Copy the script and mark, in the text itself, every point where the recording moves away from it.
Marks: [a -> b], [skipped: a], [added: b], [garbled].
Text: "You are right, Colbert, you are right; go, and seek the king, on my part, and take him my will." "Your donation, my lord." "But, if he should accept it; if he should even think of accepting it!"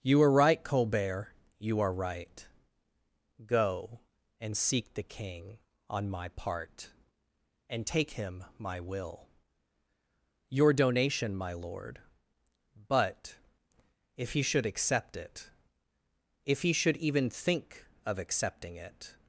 "You are right, Colbert, you are right; go, and seek the king, on my part, and take him my will." "Your donation, my lord." "But, if he should accept it; if he should even think of accepting it!"